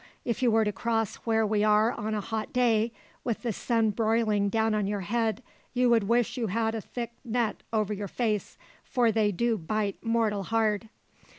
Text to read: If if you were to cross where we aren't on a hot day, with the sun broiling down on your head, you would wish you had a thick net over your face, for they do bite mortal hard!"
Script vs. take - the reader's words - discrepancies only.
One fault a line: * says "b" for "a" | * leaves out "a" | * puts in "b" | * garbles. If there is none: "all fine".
* leaves out "if"
* says "are" for "aren't"